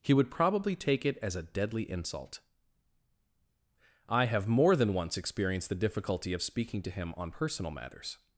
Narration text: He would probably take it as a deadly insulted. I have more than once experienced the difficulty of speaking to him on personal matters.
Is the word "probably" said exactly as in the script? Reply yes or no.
yes